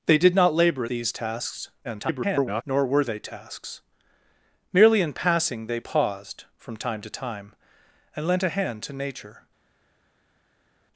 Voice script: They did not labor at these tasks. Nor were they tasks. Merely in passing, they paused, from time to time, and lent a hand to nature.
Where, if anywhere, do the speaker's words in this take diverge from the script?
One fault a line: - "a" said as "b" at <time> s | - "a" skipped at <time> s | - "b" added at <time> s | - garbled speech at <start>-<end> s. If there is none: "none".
- "at" skipped at 0.8 s
- garbled speech at 1.8-2.6 s